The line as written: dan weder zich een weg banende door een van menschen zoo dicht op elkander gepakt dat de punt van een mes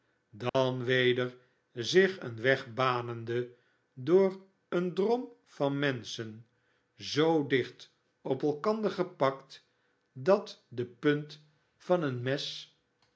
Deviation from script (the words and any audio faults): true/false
true